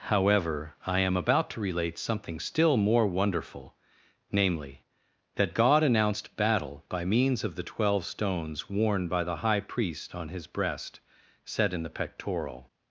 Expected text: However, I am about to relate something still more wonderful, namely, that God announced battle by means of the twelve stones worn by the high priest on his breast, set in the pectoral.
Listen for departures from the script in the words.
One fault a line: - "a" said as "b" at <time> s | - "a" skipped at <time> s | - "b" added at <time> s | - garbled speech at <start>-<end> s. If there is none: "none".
none